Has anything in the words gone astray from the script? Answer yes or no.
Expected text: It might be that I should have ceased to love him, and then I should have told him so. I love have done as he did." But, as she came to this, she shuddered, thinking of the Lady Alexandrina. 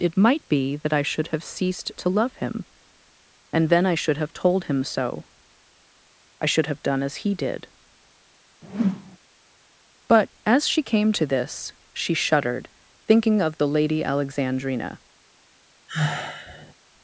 yes